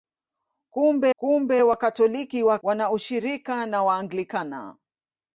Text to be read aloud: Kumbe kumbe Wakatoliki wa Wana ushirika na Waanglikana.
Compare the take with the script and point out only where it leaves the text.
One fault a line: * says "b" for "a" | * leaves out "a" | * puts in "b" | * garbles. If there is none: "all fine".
all fine